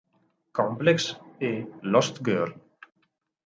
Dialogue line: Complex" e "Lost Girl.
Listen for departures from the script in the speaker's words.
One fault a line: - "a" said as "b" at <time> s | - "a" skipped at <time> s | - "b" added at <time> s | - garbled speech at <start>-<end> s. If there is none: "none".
none